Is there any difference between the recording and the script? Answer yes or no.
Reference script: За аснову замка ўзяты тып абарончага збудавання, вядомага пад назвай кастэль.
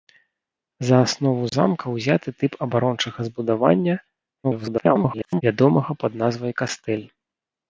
yes